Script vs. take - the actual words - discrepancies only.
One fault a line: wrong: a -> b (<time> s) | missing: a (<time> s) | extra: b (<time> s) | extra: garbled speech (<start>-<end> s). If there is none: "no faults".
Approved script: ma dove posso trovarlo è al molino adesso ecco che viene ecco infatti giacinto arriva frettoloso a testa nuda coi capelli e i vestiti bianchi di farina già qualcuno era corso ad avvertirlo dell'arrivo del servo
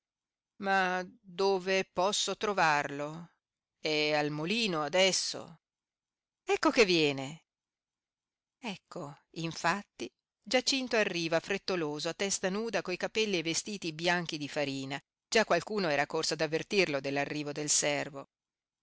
no faults